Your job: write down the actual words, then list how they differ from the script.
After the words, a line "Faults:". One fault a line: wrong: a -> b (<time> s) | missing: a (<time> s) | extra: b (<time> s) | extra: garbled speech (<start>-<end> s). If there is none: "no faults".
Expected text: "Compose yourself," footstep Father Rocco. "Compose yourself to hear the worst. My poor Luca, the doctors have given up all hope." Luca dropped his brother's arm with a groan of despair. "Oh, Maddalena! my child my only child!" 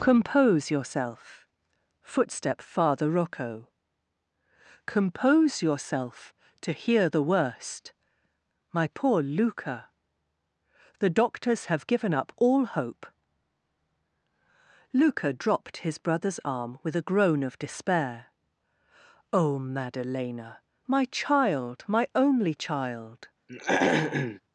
"Compose yourself," footstep Father Rocco. "Compose yourself to hear the worst. My poor Luca, the doctors have given up all hope." Luca dropped his brother's arm with a groan of despair. "Oh, Maddalena! my child my only child!"
Faults:
no faults